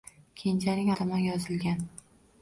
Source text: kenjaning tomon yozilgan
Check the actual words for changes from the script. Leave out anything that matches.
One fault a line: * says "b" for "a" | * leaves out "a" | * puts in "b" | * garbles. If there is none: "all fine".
all fine